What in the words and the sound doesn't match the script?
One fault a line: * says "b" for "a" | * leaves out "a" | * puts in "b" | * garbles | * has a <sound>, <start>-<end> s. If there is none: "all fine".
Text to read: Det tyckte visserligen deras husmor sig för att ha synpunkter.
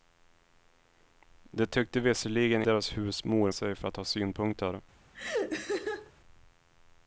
* has a laugh, 5.1-6.1 s